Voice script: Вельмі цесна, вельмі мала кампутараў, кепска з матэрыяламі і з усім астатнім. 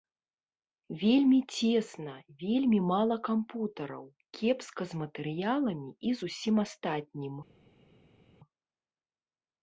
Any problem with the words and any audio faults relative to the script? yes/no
no